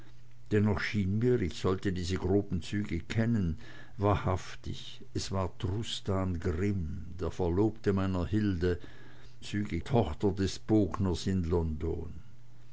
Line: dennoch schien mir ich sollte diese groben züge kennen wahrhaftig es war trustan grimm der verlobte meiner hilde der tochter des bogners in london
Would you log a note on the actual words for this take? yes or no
yes